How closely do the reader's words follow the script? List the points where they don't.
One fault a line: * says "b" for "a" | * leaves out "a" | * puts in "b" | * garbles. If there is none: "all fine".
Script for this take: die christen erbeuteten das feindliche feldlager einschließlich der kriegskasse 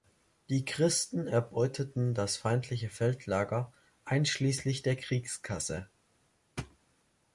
all fine